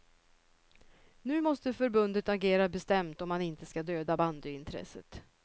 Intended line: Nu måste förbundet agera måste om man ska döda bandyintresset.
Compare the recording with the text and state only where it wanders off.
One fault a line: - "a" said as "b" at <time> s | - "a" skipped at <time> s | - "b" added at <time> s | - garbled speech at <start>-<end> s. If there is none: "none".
- "måste" said as "bestämt" at 2.7 s
- "inte" added at 3.4 s